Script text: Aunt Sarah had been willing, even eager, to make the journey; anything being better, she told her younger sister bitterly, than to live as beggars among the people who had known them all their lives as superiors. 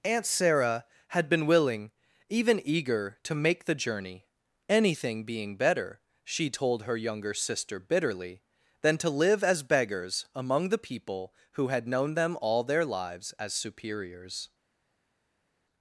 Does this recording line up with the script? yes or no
yes